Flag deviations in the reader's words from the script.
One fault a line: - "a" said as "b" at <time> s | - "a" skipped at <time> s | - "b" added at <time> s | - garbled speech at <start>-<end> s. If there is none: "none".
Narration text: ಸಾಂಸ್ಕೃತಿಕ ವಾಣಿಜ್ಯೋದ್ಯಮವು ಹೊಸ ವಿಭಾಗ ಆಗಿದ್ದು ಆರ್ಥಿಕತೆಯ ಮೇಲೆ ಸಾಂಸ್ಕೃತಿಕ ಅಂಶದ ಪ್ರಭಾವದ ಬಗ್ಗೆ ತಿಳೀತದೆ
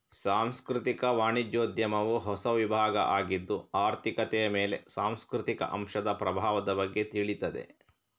none